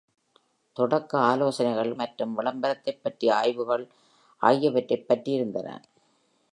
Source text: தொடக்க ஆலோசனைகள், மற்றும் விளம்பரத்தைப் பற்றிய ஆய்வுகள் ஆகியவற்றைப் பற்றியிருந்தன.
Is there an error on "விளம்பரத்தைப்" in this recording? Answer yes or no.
no